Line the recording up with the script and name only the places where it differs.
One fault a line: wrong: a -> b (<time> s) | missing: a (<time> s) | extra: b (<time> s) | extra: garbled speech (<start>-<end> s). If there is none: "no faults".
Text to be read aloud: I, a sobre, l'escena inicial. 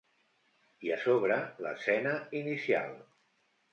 no faults